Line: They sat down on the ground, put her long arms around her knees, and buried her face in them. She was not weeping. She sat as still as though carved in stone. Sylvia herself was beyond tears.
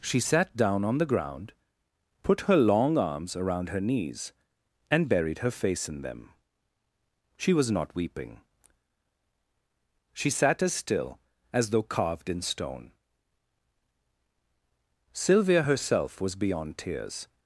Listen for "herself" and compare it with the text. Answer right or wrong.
right